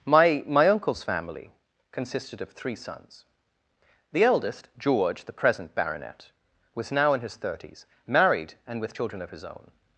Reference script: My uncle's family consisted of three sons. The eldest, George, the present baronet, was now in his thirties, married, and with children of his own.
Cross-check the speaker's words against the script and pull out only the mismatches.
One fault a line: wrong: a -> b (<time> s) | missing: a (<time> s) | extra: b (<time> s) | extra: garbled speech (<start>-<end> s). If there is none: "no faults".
extra: my (0.5 s)